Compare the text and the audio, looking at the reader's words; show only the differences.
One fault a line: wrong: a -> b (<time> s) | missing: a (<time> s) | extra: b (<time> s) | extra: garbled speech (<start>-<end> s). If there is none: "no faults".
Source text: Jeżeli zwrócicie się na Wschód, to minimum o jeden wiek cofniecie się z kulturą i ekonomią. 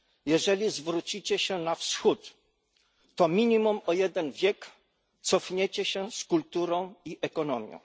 no faults